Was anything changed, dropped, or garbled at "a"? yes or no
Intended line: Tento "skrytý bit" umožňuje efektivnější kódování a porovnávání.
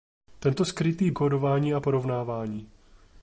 no